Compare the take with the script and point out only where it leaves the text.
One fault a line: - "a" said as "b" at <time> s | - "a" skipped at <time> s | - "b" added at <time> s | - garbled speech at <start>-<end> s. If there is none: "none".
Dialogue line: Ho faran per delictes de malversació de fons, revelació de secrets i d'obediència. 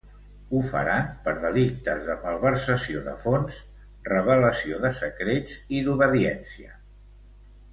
none